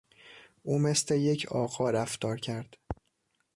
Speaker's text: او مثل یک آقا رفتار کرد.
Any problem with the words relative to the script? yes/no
no